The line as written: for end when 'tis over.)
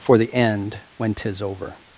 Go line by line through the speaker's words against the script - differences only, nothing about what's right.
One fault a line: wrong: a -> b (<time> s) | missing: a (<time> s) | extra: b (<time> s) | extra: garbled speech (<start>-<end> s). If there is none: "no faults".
extra: the (0.2 s)